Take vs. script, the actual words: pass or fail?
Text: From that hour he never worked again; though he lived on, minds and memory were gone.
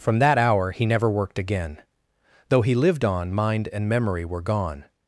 fail